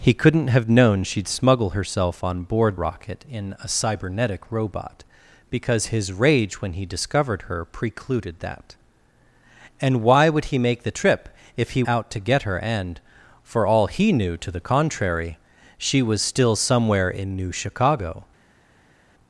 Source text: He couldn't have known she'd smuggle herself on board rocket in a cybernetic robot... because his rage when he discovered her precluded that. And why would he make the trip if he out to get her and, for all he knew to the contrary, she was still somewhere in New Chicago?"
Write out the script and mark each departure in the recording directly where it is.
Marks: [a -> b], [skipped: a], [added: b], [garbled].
He couldn't have known she'd smuggle herself on board rocket in a cybernetic robot... because his rage when he discovered her precluded that. And why would he make the trip if he out to get her and, for all he knew to the contrary, she was still somewhere in New Chicago?"